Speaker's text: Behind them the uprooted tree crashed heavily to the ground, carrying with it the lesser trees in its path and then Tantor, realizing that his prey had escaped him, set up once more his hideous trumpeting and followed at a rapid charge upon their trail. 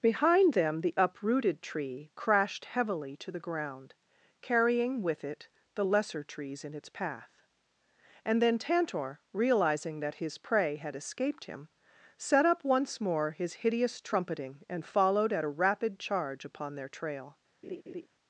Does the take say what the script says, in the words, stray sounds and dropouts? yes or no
no